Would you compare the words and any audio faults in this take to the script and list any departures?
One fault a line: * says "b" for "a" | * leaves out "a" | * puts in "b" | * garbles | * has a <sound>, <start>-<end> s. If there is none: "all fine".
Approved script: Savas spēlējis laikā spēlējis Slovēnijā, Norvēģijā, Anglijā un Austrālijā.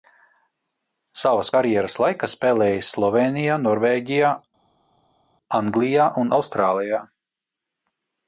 * says "karjeras" for "spēlējis"